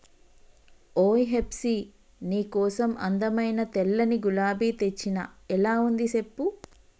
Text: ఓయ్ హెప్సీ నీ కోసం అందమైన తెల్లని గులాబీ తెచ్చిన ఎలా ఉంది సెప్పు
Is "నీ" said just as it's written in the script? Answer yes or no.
yes